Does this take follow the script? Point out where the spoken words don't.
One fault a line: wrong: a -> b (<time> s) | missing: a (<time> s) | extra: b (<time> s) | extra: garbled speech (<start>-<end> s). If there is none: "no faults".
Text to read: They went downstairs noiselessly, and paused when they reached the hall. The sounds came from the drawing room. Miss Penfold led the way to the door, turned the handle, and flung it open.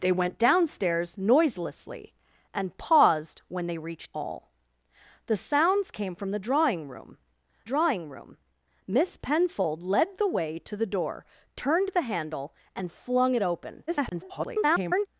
missing: the (4.1 s)
extra: drawing room (7.6 s)
extra: garbled speech (13.9-15.1 s)